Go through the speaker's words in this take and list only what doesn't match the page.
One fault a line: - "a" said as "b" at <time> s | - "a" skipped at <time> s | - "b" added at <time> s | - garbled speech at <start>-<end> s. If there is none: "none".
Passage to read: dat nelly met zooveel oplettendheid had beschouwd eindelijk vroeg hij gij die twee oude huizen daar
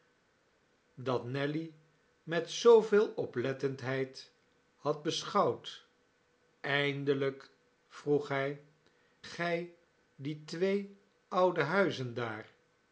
none